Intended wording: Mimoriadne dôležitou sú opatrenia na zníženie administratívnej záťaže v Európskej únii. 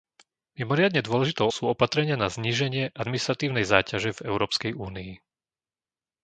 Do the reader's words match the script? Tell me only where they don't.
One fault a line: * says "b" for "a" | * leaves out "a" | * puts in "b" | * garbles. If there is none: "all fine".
all fine